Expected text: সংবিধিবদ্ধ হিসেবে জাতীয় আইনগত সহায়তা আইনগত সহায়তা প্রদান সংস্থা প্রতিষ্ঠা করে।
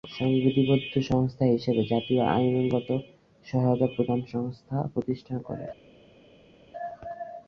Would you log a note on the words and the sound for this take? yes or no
yes